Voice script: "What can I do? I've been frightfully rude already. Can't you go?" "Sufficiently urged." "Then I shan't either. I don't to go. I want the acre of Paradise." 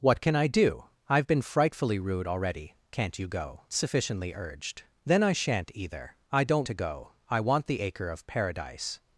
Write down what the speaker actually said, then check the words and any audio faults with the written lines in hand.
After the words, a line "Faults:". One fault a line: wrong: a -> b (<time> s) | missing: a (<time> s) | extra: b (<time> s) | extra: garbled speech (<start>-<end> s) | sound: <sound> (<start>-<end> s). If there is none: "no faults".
"What can I do? I've been frightfully rude already. Can't you go?" "Sufficiently urged." "Then I shan't either. I don't to go. I want the acre of Paradise."
Faults:
no faults